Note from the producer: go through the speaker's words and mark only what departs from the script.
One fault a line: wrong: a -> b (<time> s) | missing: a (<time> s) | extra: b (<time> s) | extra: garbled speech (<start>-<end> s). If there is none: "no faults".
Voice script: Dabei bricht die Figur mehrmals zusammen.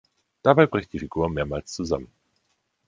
no faults